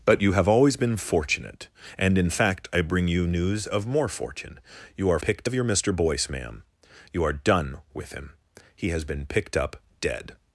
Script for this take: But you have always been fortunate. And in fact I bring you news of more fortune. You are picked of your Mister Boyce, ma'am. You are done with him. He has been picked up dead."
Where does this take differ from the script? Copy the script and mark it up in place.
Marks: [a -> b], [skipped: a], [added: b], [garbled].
But you have always been fortunate. And in fact I bring you news of more fortune. You are picked of your Mister Boyce, ma'am. You are done with him. He has been picked up dead."